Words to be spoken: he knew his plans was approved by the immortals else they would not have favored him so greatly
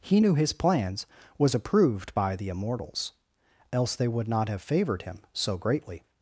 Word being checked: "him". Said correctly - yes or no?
yes